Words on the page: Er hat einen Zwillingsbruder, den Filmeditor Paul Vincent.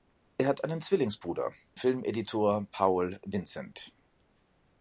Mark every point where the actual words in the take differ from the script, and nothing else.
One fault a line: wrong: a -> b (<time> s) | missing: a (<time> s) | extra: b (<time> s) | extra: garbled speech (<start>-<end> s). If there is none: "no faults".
missing: den (1.5 s)